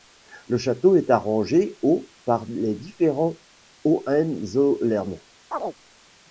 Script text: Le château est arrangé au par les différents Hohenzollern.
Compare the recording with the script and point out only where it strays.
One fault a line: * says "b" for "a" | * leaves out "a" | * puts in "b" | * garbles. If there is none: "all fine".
all fine